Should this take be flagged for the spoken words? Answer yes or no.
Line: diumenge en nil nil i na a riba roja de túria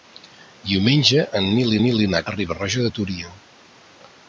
no